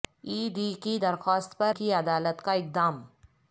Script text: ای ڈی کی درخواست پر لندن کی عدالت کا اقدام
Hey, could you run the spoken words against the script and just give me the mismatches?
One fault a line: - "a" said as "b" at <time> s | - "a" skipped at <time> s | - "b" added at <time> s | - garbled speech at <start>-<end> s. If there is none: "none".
- "لندن" skipped at 1.7 s